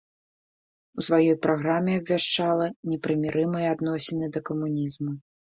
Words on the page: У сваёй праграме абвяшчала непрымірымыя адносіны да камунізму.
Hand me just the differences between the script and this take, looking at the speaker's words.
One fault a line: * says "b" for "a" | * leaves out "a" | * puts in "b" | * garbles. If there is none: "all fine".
all fine